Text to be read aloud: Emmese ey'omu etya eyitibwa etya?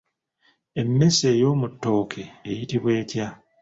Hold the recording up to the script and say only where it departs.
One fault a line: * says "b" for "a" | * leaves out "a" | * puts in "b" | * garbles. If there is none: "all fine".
* says "ttooke" for "etya"